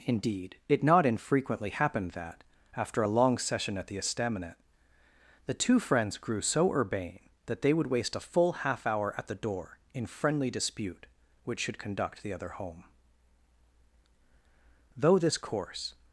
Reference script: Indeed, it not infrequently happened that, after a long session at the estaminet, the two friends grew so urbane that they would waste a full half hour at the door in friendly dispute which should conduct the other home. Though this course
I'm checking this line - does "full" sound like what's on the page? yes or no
yes